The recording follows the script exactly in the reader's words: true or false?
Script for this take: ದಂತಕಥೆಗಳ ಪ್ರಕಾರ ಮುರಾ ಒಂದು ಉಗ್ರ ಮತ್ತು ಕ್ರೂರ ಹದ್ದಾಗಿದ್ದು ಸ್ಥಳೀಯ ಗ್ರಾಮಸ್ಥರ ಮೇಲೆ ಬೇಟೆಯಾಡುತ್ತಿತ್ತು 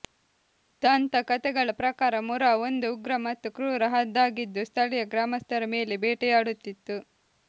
true